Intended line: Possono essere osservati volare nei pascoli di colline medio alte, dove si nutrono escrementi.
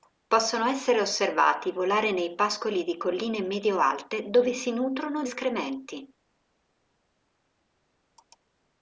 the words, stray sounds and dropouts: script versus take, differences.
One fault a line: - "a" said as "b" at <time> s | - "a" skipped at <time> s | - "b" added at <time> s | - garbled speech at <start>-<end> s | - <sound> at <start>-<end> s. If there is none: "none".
none